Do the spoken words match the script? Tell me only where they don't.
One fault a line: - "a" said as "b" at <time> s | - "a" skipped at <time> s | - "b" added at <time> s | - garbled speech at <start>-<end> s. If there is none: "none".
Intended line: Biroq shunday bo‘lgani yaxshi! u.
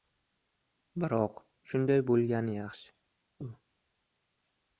none